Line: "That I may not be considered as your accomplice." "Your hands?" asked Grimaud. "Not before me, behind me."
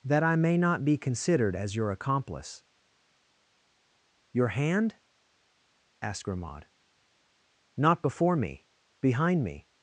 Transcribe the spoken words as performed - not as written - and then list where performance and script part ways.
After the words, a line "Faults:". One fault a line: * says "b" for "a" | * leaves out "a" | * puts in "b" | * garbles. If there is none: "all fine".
"That I may not be considered as your accomplice." "Your hand?" asked Grimaud. "Not before me, behind me."
Faults:
* says "hand" for "hands"